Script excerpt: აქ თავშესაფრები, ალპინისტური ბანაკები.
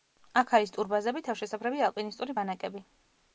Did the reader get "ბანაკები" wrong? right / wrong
right